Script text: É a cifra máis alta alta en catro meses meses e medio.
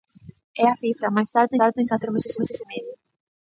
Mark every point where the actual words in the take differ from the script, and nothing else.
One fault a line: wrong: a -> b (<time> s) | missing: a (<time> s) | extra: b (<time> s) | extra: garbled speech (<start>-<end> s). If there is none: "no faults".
no faults